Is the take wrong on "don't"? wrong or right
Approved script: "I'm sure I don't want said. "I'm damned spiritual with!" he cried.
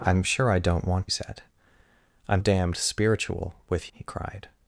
right